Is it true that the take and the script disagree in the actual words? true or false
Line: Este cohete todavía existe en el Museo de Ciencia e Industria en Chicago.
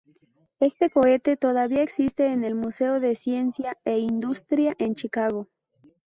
false